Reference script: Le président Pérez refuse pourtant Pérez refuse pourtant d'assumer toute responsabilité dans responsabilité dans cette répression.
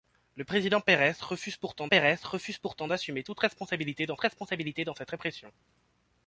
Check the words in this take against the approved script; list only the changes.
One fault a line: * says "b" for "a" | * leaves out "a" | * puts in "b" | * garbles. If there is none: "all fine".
all fine